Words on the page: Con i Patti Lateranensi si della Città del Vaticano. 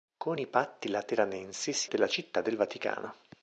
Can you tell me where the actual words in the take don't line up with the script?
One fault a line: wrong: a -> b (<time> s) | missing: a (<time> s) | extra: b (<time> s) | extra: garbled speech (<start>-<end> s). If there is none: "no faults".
no faults